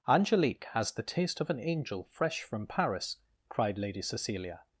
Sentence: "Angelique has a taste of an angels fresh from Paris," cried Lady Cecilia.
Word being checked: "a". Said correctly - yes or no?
no